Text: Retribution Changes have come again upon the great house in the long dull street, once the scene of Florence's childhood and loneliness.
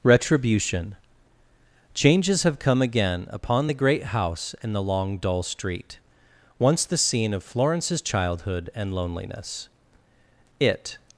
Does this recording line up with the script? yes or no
no